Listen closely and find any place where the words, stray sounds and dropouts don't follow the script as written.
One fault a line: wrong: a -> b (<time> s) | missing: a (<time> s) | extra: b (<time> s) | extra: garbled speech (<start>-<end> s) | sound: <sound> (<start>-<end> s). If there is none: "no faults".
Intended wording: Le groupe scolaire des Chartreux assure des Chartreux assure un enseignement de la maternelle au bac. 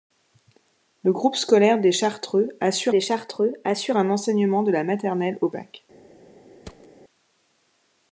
sound: thud (6.6-6.9 s)